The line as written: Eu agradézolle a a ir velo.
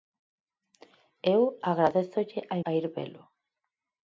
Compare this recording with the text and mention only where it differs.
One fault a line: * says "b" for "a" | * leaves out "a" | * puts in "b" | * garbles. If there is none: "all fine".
all fine